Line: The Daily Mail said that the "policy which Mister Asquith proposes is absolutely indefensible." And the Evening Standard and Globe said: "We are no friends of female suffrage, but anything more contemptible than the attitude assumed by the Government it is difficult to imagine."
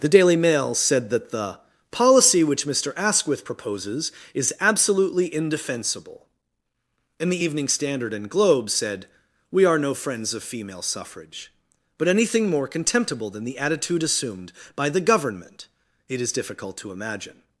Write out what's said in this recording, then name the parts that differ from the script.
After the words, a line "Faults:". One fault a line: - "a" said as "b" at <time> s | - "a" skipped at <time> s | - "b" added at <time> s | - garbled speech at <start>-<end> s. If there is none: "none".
The Daily Mail said that the "policy which Mister Asquith proposes is absolutely indefensible." And the Evening Standard and Globe said: "We are no friends of female suffrage, but anything more contemptible than the attitude assumed by the Government it is difficult to imagine."
Faults:
none